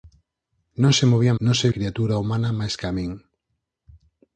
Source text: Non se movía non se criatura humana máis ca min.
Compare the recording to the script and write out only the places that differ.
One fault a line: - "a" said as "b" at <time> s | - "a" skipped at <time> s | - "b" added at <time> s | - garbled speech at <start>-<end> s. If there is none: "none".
none